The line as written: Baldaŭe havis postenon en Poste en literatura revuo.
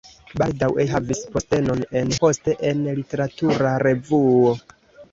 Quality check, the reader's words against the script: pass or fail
pass